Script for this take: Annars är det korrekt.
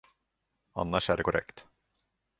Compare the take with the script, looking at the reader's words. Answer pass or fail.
pass